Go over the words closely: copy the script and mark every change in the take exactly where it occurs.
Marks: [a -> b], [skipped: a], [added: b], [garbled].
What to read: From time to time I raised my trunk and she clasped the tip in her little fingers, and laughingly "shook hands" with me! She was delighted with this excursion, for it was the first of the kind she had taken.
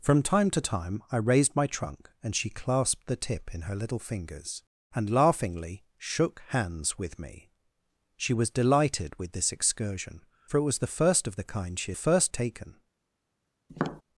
From time to time I raised my trunk and she clasped the tip in her little fingers, and laughingly "shook hands" with me! She was delighted with this excursion, for it was the first of the kind she [had -> first] taken.